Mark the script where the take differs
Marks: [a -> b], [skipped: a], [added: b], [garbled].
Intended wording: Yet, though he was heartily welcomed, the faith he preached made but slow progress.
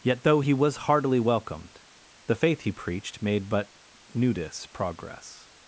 Yet, though he was heartily welcomed, the faith he preached made but [slow -> nudis] progress.